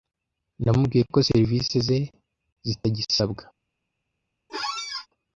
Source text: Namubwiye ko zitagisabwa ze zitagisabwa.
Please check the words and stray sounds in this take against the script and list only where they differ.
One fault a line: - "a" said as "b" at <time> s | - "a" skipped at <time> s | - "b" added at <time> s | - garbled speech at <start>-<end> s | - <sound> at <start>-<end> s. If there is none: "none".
- "zitagisabwa" said as "serivisi" at 1.3 s
- squeak at 4.5-5.1 s